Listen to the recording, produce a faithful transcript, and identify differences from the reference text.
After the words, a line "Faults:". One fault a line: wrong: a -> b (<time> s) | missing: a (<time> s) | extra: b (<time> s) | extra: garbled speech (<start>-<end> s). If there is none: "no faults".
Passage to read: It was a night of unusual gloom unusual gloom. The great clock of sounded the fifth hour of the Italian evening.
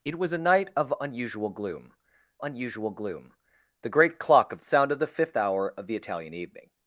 It was a night of unusual gloom unusual gloom. The great clock of sounded the fifth hour of the Italian evening.
Faults:
no faults